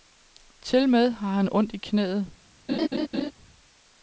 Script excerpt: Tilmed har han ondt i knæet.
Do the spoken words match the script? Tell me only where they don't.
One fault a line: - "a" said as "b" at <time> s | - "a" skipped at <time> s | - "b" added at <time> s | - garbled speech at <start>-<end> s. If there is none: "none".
none